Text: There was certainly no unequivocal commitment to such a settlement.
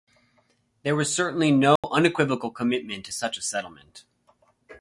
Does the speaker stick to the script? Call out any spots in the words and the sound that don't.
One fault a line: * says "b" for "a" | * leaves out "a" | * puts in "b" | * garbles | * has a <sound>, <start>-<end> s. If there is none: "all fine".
* has a dropout, 1.8-1.8 s